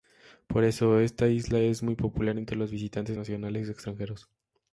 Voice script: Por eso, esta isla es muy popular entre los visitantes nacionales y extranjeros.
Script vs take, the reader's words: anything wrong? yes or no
no